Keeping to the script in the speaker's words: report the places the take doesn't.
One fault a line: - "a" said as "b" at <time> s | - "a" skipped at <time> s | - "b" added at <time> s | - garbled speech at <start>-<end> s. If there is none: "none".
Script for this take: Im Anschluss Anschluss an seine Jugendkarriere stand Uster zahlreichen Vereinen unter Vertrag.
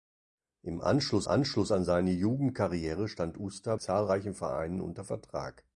none